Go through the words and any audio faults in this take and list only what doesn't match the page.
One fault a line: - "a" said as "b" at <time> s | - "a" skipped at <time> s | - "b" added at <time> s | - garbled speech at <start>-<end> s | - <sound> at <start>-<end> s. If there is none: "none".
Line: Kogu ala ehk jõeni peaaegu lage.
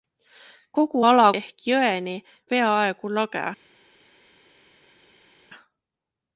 none